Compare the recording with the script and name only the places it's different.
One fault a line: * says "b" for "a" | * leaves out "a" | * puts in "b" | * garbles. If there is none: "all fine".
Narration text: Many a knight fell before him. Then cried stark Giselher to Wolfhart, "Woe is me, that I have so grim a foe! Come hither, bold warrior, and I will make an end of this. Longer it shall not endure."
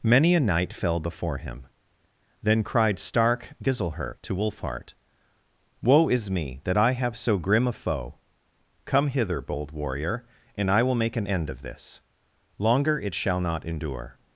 all fine